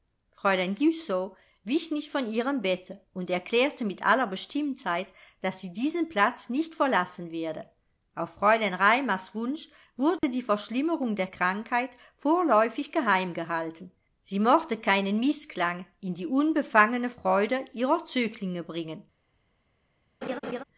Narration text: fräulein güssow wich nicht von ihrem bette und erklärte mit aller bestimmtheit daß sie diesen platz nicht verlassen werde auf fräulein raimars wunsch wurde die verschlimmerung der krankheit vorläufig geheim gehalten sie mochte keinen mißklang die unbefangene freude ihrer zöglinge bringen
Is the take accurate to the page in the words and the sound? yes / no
no